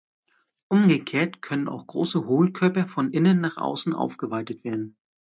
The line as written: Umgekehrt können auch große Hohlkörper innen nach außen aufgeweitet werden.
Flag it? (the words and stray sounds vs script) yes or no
yes